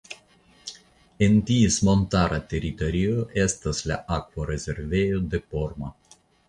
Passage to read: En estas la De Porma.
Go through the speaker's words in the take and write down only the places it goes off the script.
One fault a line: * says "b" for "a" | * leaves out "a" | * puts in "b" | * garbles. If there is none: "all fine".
* puts in "ties montara teritorio"
* puts in "Akvorezervejo"